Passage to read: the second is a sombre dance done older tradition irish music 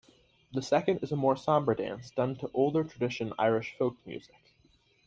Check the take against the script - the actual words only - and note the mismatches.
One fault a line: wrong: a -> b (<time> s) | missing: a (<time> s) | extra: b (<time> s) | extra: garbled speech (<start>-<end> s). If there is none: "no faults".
extra: more (1.1 s)
extra: to (2.4 s)
extra: folk (3.8 s)